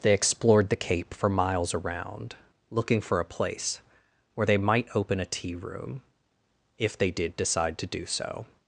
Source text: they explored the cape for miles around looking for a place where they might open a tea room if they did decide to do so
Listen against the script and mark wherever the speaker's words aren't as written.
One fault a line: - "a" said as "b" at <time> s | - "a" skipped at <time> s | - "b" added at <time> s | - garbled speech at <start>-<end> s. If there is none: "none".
none